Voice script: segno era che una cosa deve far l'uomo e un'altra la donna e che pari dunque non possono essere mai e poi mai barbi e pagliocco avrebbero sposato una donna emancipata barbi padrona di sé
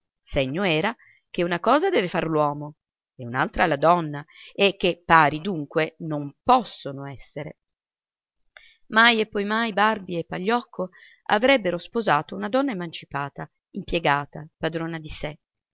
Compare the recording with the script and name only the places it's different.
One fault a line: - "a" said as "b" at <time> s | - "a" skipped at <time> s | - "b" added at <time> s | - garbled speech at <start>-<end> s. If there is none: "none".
- "barbi" said as "impiegata" at 13.7 s